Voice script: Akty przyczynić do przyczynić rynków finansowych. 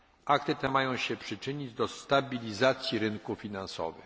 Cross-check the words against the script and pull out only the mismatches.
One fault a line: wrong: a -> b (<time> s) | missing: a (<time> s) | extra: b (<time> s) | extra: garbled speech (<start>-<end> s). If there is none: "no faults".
extra: te mają się (0.6 s)
wrong: przyczynić -> stabilizacji (1.9 s)